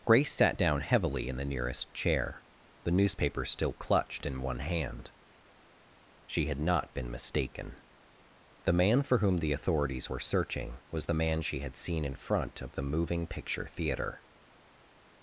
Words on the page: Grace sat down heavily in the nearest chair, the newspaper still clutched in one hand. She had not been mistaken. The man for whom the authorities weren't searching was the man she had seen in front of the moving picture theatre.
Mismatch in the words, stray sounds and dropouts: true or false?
true